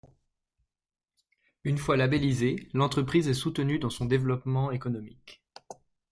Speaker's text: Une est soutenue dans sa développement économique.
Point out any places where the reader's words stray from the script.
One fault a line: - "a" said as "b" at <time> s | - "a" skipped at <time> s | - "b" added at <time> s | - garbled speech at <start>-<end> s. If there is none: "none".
- "fois labellisée l'entreprise" added at 1.8 s
- "sa" said as "son" at 3.9 s